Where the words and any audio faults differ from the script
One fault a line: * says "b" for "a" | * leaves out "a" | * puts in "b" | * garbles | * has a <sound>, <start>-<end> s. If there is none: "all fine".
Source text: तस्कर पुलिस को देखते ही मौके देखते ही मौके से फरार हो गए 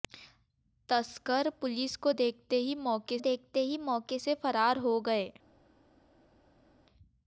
all fine